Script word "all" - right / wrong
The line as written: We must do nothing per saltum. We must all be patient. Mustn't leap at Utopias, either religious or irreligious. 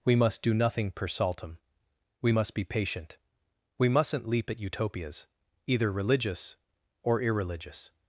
wrong